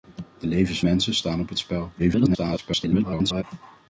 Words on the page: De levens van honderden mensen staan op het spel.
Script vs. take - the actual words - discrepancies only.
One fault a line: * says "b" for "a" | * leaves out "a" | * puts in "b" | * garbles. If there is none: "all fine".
* leaves out "van honderden"
* garbles